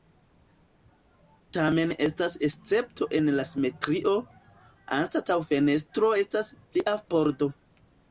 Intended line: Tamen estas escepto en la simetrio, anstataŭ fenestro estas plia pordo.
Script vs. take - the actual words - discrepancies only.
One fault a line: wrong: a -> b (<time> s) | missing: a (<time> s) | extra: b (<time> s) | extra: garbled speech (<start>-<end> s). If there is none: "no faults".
no faults